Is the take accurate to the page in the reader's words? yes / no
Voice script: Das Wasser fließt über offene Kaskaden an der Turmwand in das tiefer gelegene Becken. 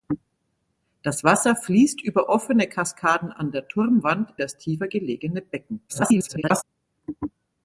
no